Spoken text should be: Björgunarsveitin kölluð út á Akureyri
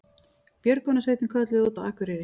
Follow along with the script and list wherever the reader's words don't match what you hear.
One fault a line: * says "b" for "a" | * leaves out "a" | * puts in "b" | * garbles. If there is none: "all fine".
all fine